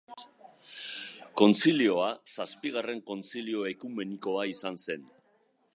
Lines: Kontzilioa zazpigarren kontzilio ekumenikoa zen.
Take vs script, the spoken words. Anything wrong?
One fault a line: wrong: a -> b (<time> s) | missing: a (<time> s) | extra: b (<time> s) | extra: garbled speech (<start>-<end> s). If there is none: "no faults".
extra: izan (4.5 s)